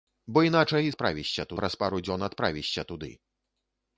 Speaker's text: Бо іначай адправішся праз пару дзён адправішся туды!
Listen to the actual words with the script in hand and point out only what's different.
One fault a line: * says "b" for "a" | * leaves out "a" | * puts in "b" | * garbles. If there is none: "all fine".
all fine